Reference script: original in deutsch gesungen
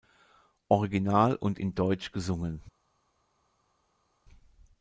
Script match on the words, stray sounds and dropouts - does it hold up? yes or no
no